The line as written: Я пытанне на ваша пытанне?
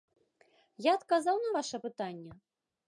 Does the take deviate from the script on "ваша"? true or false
false